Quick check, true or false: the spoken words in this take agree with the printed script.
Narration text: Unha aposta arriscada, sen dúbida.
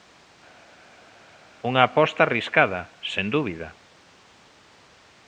true